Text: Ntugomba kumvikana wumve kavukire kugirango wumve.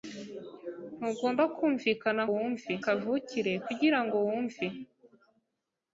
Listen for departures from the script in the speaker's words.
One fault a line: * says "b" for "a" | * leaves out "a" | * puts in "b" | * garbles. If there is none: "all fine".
all fine